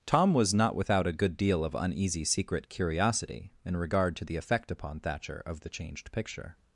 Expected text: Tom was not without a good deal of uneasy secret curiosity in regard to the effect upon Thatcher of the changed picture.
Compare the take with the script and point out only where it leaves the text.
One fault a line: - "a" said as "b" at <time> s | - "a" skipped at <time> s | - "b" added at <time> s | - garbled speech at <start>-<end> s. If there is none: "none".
none